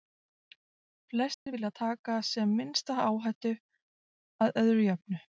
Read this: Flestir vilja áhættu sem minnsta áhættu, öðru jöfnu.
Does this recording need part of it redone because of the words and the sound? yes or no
yes